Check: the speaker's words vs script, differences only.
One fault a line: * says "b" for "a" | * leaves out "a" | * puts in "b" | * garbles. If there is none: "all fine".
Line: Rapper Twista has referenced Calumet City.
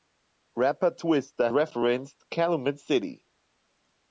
* leaves out "has"